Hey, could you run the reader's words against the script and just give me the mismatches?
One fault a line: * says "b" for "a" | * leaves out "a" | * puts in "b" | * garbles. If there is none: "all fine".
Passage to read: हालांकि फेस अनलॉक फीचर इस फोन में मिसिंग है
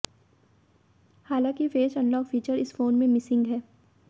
all fine